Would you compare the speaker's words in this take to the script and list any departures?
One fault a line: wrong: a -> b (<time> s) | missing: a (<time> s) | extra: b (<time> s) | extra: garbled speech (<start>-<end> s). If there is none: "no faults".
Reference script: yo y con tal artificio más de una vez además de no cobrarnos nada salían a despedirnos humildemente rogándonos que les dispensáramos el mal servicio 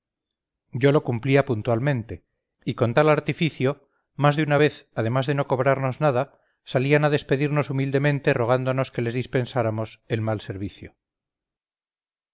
extra: lo cumplía puntualmente (0.9 s)